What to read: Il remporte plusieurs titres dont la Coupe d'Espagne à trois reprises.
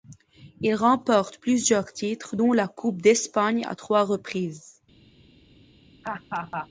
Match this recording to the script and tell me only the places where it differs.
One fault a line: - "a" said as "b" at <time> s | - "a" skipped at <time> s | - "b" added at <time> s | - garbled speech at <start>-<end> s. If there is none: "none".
none